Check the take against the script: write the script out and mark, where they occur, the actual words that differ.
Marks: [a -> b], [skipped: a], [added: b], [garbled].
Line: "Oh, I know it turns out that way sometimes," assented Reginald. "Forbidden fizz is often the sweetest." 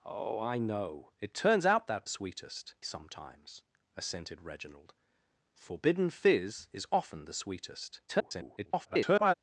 "Oh, I know it turns out that [way -> sweetest] sometimes," assented Reginald. "Forbidden fizz is often the sweetest." [garbled]